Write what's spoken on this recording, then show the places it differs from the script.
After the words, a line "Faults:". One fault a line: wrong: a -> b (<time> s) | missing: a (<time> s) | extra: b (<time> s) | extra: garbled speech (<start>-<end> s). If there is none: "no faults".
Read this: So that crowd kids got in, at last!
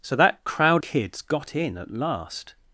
So that crowd kids got in, at last!
Faults:
no faults